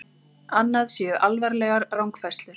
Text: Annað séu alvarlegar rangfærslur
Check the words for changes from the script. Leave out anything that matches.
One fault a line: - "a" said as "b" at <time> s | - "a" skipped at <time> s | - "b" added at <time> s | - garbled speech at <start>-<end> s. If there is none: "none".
none